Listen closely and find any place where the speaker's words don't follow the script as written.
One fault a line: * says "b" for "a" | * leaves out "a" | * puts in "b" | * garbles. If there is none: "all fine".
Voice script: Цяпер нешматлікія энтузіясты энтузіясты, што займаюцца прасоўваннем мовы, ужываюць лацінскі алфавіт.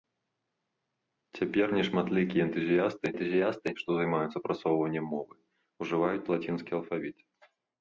all fine